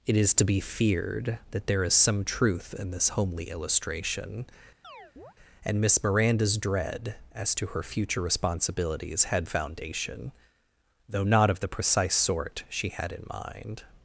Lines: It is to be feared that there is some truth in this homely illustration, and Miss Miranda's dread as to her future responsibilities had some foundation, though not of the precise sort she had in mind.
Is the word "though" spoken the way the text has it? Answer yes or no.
yes